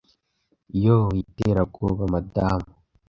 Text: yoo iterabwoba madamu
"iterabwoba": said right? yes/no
yes